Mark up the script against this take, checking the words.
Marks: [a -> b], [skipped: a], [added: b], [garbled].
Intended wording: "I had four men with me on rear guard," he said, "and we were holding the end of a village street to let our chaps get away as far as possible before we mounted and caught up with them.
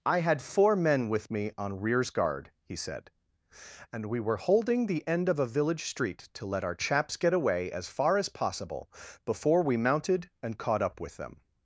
"I had four men with me on [rear -> rears] guard," he said, "and we were holding the end of a village street to let our chaps get away as far as possible before we mounted and caught up with them.